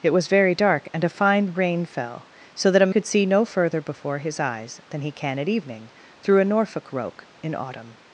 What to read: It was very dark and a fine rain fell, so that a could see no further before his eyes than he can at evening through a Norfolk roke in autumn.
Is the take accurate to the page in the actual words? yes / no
yes